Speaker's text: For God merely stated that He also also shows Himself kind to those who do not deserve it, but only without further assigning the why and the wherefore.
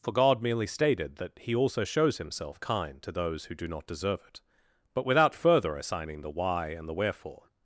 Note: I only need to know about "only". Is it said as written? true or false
false